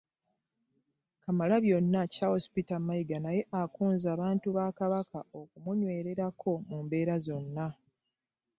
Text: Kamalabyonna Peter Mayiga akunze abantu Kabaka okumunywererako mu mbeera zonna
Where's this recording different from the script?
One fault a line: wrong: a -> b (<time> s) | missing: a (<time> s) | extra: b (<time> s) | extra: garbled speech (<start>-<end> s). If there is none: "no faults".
extra: Charles (2.1 s)
extra: naye (3.3 s)
extra: ba (4.6 s)